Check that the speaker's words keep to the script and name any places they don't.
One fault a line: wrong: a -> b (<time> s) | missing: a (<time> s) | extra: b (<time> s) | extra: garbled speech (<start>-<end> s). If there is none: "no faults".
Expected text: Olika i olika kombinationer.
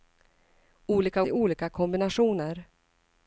no faults